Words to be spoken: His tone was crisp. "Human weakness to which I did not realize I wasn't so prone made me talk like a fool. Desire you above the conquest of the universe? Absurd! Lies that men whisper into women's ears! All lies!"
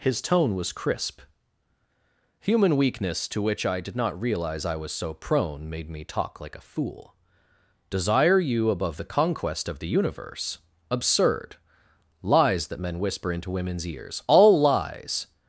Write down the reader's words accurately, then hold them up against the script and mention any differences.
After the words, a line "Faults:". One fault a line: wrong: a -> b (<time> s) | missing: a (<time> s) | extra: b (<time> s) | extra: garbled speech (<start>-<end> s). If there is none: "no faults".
His tone was crisp. "Human weakness to which I did not realize I was so prone made me talk like a fool. Desire you above the conquest of the universe? Absurd! Lies that men whisper into women's ears! All lies!"
Faults:
wrong: wasn't -> was (4.8 s)